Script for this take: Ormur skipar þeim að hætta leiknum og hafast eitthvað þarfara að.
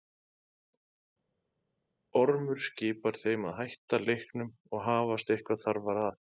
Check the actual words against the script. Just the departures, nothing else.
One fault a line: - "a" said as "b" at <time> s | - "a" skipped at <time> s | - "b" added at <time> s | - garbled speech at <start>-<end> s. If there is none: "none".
none